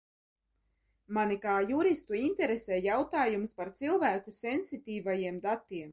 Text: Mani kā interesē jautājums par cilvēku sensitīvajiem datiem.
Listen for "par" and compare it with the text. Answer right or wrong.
right